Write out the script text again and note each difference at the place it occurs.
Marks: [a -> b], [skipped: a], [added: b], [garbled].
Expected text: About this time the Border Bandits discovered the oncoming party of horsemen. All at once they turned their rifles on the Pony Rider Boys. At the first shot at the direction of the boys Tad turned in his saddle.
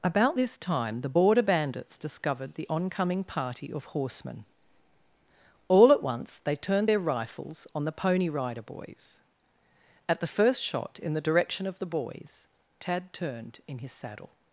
About this time the Border Bandits discovered the oncoming party of horsemen. All at once they turned their rifles on the Pony Rider Boys. At the first shot [at -> in] the direction of the boys Tad turned in his saddle.